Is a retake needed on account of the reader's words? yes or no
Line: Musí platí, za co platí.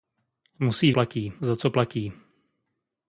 no